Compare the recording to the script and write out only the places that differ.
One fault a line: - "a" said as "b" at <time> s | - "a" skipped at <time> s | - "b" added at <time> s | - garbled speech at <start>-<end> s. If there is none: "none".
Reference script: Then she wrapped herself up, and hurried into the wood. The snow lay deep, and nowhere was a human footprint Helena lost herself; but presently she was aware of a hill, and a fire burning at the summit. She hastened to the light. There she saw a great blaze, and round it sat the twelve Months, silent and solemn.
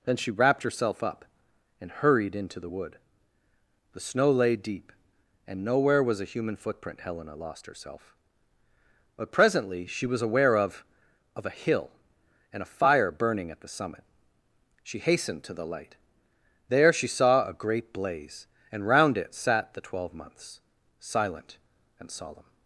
- "of" added at 11.3 s